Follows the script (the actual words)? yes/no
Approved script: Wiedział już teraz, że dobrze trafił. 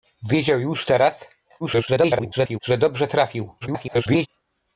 no